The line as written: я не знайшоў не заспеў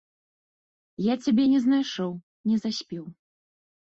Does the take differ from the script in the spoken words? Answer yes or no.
yes